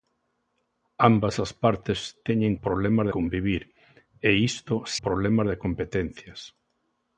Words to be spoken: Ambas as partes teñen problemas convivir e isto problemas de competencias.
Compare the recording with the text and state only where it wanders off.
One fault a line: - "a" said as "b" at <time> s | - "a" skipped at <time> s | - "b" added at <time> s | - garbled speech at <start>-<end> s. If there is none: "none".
none